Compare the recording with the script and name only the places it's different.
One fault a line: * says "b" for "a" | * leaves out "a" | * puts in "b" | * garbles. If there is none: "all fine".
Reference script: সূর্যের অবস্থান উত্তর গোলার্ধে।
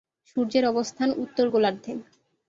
all fine